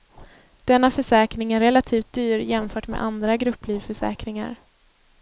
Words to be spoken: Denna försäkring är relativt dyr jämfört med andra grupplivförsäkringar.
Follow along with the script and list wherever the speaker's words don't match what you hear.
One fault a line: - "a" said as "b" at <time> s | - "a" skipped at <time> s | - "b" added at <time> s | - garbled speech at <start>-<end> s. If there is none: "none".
none